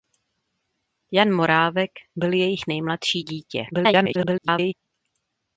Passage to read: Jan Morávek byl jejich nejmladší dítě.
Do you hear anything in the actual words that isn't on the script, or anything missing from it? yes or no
yes